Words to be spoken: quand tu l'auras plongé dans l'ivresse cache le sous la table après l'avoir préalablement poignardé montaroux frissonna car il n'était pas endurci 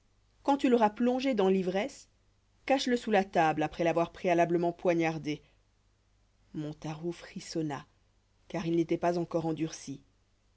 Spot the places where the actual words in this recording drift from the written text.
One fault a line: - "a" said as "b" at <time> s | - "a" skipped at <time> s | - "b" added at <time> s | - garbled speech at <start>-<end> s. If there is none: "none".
- "encore" added at 9.2 s